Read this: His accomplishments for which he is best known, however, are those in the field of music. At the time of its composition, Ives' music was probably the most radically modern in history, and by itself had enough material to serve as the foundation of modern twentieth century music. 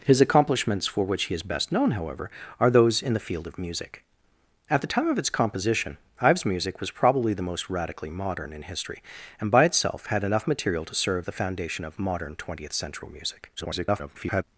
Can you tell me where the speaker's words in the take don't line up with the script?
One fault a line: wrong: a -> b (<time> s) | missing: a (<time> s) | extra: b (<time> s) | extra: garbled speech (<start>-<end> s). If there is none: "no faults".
missing: as (11.3 s)
extra: garbled speech (13.6-14.4 s)